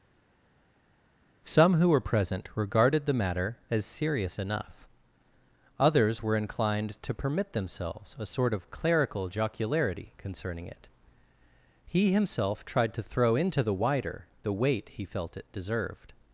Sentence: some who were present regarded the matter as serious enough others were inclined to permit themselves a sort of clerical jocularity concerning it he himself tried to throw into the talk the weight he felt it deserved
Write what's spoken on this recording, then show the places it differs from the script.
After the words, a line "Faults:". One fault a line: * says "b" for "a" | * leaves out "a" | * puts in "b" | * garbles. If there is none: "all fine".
some who were present regarded the matter as serious enough others were inclined to permit themselves a sort of clerical jocularity concerning it he himself tried to throw into the wider the weight he felt it deserved
Faults:
* says "wider" for "talk"